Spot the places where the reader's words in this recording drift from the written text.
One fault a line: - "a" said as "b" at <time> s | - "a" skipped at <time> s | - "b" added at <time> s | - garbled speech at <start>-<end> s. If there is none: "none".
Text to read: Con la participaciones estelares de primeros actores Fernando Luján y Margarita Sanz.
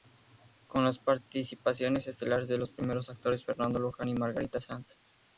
- "la" said as "las" at 0.8 s
- "los" added at 2.6 s